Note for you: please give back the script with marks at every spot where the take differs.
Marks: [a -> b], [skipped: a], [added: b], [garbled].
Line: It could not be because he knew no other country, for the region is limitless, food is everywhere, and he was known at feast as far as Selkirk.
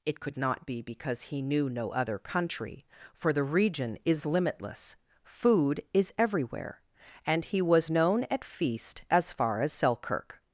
It could not be because he knew no other country, for the region is limitless, food is everywhere, and he was known at feast as far as Selkirk.